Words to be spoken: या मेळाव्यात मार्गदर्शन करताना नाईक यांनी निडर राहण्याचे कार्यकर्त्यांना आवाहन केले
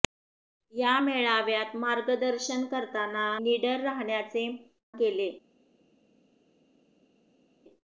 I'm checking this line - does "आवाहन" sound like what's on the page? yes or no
no